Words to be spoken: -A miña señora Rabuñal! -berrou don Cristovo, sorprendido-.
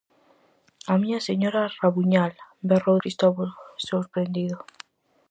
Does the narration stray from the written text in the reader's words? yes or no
yes